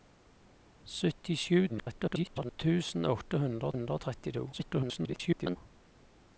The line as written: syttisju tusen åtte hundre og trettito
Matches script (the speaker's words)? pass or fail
fail